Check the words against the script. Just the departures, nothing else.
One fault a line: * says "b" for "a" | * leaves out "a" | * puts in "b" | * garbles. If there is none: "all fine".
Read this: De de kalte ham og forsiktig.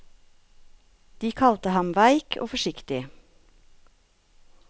* leaves out "de"
* puts in "veik"